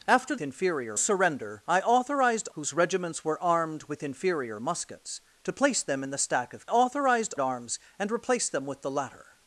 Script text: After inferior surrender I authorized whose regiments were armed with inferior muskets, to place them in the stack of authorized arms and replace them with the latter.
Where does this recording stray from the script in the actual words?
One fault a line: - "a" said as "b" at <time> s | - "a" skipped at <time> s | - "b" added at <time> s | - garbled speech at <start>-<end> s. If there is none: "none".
none